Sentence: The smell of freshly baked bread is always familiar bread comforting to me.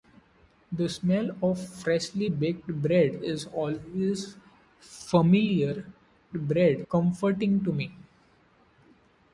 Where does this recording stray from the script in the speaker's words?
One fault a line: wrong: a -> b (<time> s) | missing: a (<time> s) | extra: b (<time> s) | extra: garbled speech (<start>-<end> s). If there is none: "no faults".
no faults